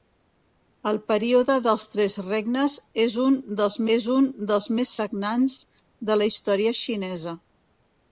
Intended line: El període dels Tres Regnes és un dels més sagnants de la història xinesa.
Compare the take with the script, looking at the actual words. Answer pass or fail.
fail